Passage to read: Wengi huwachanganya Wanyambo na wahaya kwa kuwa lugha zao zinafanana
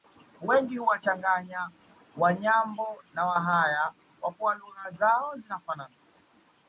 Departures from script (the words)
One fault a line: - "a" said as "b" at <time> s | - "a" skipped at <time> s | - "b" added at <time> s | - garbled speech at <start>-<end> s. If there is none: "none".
none